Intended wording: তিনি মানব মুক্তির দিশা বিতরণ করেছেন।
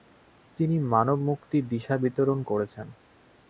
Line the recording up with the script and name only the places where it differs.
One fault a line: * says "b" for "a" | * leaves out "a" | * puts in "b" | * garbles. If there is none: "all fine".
all fine